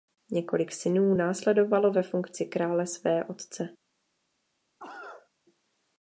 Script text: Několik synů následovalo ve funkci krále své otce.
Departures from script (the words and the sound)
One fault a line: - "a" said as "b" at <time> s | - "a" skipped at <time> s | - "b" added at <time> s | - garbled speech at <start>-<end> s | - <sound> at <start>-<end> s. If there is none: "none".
- cough at 4.8-5.3 s